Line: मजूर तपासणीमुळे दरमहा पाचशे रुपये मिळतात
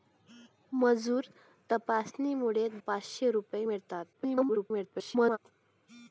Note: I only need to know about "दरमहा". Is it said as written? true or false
false